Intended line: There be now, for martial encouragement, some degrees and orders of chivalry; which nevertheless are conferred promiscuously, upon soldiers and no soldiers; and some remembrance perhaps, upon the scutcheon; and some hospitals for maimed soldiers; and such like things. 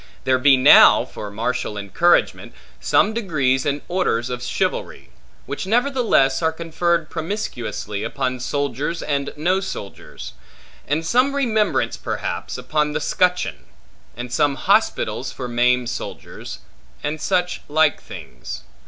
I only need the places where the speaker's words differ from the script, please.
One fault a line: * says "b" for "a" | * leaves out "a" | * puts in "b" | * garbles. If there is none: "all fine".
all fine